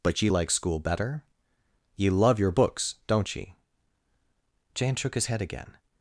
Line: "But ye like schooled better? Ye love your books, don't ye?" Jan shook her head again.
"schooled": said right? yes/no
no